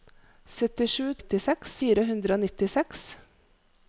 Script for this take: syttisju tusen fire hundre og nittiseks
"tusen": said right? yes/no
no